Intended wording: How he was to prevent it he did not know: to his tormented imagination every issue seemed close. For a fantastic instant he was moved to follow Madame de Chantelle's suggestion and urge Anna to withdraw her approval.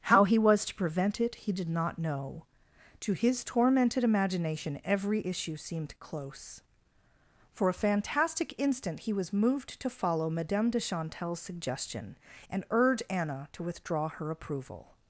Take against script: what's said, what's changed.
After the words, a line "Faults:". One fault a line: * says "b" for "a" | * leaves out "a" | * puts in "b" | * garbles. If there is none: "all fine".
How he was to prevent it he did not know: to his tormented imagination every issue seemed close. For a fantastic instant he was moved to follow Madame de Chantelle's suggestion and urge Anna to withdraw her approval.
Faults:
all fine